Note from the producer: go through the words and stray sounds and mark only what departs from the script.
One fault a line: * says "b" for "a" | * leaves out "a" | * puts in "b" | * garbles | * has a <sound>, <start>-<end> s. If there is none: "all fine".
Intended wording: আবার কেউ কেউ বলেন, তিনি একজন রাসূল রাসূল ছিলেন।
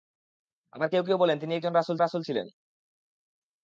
all fine